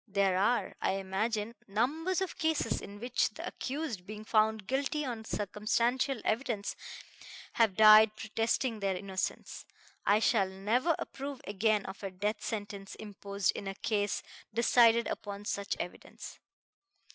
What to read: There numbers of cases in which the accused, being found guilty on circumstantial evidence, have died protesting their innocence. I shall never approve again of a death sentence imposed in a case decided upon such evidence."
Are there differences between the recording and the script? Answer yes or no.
yes